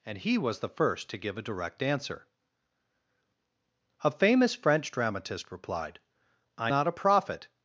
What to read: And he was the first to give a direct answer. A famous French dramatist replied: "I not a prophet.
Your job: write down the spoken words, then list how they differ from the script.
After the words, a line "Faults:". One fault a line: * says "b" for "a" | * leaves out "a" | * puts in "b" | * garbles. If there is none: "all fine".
And he was the first to give a direct answer. A famous French dramatist replied: "I not a prophet.
Faults:
all fine